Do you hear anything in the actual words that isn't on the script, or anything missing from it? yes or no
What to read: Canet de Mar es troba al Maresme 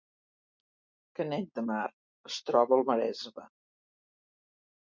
no